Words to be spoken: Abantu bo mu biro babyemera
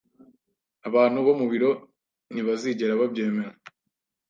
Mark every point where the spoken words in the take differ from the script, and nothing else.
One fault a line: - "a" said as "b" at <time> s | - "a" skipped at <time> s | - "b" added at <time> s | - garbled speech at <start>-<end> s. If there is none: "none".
- "ntibazigera" added at 2.3 s